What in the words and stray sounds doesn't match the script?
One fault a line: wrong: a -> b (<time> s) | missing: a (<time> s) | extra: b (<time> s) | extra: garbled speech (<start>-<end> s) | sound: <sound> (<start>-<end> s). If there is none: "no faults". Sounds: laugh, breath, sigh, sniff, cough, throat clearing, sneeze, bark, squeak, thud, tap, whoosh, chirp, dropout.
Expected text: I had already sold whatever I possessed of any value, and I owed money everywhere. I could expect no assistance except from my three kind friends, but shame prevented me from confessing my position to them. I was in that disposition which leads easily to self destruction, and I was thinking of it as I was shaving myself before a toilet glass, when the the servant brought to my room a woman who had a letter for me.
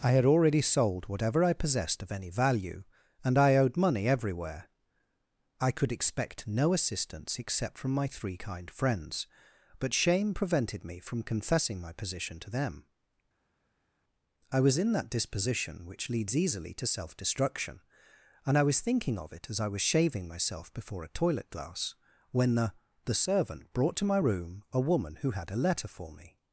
no faults